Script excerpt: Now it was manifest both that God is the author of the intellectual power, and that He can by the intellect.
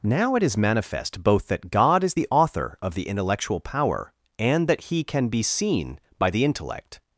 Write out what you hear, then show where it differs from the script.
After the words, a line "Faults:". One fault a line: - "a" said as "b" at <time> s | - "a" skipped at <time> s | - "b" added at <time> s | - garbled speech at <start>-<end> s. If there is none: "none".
Now it is manifest both that God is the author of the intellectual power, and that He can be seen by the intellect.
Faults:
- "was" said as "is" at 0.4 s
- "be seen" added at 5.3 s